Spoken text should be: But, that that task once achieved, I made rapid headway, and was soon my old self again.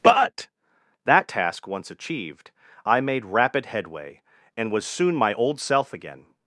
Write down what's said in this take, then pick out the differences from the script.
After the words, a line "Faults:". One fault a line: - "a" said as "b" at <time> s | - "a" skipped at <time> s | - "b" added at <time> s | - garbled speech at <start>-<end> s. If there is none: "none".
But, that task once achieved, I made rapid headway, and was soon my old self again.
Faults:
- "that" skipped at 1.3 s